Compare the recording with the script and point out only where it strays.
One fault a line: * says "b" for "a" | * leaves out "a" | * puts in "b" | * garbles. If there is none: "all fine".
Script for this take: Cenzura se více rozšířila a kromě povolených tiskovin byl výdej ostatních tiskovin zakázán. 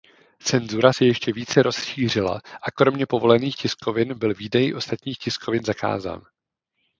* puts in "ještě"